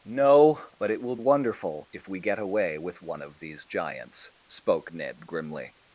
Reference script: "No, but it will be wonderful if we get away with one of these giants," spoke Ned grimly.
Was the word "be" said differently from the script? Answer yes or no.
yes